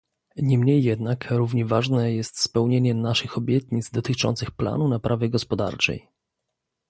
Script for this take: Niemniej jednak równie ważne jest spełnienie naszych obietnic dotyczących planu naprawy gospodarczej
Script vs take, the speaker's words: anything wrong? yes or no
no